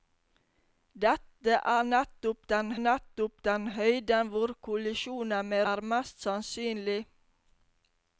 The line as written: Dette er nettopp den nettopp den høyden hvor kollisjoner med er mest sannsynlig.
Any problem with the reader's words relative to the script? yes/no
no